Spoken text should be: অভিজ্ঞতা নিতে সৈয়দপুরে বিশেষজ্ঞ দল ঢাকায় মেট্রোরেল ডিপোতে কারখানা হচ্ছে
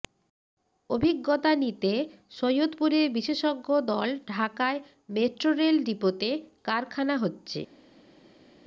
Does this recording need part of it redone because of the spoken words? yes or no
no